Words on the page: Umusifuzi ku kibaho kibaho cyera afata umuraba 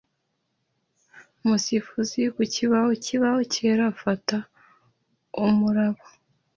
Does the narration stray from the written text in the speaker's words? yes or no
no